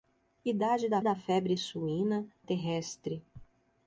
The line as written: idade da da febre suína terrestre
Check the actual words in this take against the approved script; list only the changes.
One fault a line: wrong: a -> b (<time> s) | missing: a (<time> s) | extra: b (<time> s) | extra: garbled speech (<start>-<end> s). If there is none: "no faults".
no faults